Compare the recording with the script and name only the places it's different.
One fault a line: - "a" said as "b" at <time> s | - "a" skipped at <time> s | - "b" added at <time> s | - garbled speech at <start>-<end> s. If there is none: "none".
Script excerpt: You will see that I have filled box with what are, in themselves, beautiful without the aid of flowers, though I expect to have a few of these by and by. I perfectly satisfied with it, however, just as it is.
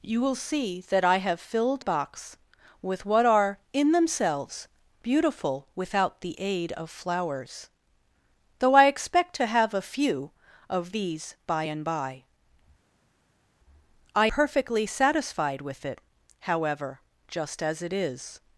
none